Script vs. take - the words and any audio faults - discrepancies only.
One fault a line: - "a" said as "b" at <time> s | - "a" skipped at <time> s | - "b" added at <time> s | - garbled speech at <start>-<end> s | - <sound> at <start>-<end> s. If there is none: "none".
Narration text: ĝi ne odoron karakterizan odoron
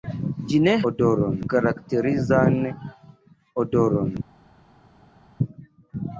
none